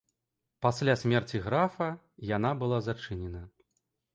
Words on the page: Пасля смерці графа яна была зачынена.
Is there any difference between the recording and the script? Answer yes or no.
no